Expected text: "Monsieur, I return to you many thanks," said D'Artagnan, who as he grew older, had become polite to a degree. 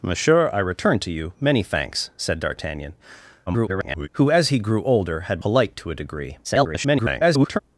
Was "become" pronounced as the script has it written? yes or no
no